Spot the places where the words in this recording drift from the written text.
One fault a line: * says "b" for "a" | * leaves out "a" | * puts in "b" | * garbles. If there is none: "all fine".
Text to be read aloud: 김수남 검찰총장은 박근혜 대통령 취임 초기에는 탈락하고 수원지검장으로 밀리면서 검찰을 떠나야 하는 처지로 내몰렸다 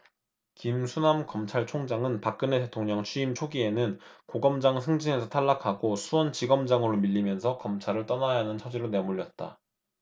* puts in "고검장 승진에서"